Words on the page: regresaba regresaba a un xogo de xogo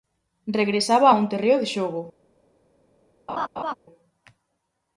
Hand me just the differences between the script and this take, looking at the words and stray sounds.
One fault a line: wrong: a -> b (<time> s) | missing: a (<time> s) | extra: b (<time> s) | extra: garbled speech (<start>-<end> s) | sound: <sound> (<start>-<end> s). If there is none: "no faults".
missing: regresaba (1.1 s)
wrong: xogo -> terreo (1.3 s)
sound: laugh (3.3-3.7 s)